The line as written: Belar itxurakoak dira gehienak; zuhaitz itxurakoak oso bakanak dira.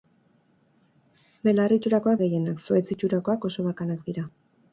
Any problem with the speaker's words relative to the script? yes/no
yes